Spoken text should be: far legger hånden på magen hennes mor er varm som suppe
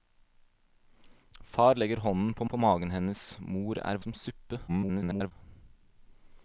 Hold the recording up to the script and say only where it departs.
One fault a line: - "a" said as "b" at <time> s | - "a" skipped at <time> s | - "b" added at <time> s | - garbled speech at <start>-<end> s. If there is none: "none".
- "på" added at 2.5 s
- "varm" skipped at 4.0 s
- garbled speech at 4.7-5.3 s